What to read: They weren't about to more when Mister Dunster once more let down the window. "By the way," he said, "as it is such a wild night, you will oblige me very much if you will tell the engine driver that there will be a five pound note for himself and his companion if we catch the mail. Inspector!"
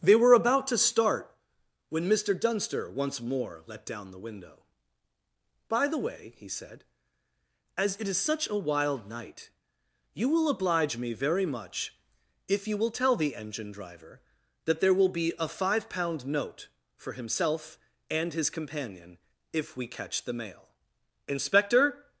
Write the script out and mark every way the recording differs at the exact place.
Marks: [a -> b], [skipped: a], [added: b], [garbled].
They [weren't -> were] about to [more -> start] when Mister Dunster once more let down the window. "By the way," he said, "as it is such a wild night, you will oblige me very much if you will tell the engine driver that there will be a five pound note for himself and his companion if we catch the mail. Inspector!"